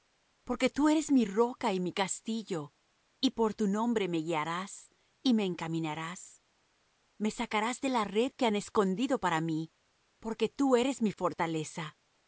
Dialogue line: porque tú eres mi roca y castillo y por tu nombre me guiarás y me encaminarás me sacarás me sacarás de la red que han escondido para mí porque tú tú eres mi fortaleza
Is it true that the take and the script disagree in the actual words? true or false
true